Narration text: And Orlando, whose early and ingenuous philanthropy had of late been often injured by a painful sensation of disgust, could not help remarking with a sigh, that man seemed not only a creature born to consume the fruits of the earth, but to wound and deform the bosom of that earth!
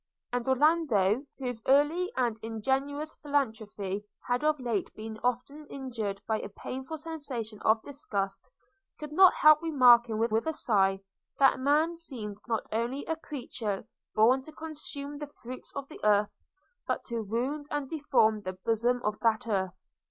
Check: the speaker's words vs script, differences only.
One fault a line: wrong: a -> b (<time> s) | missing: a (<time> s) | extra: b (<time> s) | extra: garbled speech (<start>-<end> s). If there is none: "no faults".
extra: with (10.3 s)